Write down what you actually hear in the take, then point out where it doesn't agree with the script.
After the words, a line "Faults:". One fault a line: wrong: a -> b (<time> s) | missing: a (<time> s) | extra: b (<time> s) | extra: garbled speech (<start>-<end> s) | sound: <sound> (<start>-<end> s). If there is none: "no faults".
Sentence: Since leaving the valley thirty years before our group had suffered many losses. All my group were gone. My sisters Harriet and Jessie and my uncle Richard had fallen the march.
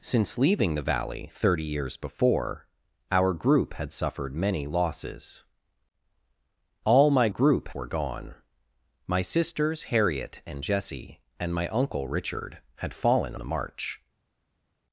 Since leaving the valley thirty years before our group had suffered many losses. All my group were gone. My sisters Harriet and Jessie and my uncle Richard had fallen the march.
Faults:
no faults